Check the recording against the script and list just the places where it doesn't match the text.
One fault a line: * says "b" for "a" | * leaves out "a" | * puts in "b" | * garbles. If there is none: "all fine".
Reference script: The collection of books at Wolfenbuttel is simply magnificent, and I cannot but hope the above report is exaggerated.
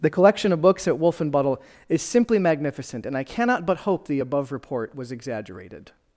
* says "was" for "is"